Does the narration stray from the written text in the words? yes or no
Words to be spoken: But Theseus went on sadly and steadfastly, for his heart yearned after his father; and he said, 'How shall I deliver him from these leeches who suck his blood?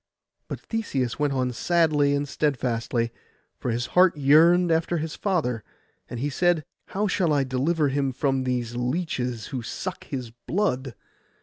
no